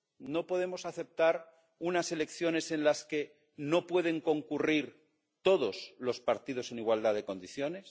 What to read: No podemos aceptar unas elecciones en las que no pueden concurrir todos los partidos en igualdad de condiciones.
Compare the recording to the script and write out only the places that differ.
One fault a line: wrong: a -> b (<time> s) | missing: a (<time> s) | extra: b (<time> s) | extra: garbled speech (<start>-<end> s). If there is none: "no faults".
no faults